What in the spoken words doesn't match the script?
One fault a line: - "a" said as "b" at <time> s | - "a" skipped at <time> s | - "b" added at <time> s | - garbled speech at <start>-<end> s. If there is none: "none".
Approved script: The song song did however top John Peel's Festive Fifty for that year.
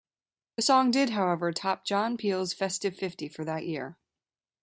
- "song" skipped at 0.9 s